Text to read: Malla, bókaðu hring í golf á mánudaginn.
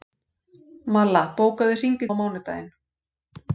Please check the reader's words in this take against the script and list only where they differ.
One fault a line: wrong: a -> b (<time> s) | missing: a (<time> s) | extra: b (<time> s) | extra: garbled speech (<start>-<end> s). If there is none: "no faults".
missing: golf (2.1 s)